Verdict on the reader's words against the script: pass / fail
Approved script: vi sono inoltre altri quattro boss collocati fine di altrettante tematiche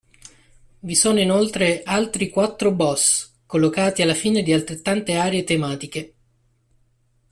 fail